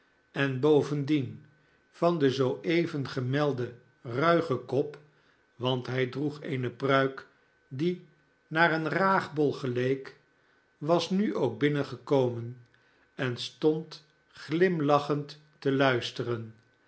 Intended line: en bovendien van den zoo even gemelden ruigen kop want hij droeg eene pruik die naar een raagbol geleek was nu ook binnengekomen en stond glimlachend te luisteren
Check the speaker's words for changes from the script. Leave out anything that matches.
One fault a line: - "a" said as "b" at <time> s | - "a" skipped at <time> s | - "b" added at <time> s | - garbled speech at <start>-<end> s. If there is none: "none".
none